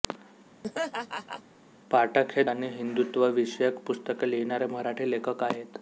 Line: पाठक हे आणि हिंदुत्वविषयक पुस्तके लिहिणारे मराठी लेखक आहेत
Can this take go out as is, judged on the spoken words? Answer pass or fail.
pass